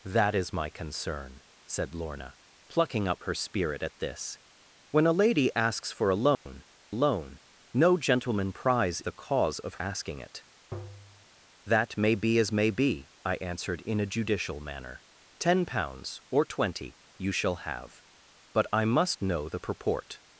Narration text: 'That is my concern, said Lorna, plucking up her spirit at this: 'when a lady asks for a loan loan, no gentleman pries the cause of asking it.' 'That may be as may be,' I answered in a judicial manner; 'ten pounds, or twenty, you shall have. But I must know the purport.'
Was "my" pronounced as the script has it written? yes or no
yes